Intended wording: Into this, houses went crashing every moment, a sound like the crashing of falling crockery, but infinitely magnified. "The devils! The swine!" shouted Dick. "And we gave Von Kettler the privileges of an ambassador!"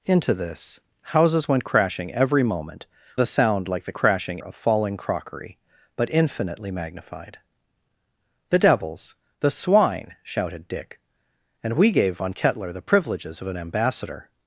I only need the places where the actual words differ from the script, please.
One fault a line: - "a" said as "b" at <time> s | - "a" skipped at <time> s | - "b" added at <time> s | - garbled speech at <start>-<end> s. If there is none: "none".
none